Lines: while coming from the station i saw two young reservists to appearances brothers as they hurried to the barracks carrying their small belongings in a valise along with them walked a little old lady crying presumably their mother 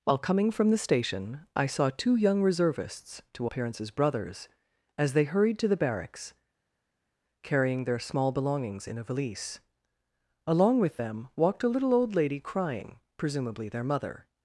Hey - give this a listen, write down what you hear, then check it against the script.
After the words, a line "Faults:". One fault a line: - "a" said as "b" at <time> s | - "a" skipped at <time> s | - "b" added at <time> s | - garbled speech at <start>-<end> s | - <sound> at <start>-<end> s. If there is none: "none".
while coming from the station i saw two young reservists to appearances brothers as they hurried to the barracks carrying their small belongings in a valise along with them walked a little old lady crying presumably their mother
Faults:
none